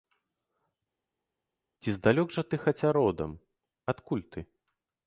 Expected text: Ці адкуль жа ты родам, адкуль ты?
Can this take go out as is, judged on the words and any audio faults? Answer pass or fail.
fail